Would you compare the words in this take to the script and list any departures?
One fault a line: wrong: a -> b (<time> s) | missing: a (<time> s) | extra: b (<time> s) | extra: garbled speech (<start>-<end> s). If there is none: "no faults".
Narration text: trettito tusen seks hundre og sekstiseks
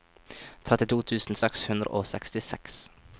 no faults